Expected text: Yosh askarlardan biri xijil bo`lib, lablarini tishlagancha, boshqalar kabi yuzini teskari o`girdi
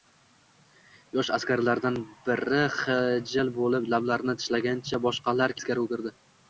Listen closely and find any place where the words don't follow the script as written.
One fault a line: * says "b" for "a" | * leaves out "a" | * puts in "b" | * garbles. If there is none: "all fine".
* leaves out "kabi yuzini"